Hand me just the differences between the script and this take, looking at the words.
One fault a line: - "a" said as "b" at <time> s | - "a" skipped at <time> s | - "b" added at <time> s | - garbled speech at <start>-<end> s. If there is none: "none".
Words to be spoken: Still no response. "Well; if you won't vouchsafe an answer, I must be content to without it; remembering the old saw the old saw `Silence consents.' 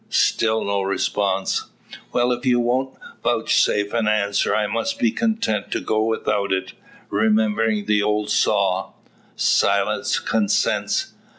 - "go" added at 5.8 s
- "the old saw" skipped at 8.9 s